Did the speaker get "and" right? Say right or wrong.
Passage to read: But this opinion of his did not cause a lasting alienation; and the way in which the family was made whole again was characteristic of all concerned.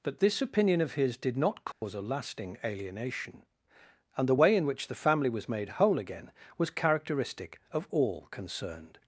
right